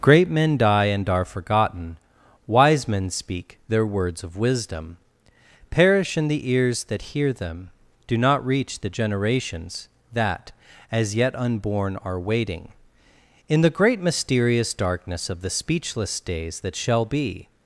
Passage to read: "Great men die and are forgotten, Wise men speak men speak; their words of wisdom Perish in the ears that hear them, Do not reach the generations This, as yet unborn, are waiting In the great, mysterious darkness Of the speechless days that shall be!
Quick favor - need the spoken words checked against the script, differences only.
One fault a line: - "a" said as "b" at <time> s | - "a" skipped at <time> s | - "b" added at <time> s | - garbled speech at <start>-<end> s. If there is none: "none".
- "men speak" skipped at 3.6 s
- "This" said as "That" at 10.1 s